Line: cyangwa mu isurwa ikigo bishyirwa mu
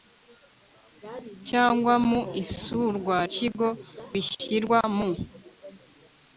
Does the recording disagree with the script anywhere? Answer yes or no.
no